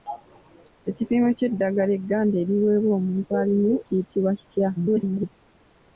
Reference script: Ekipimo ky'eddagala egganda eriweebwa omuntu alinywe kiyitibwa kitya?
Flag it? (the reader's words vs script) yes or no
yes